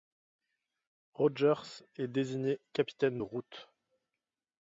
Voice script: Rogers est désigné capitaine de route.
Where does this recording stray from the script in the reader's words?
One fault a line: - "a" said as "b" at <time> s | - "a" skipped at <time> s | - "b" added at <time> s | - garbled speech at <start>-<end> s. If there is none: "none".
none